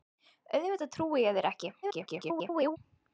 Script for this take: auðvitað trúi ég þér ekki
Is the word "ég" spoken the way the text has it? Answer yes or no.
yes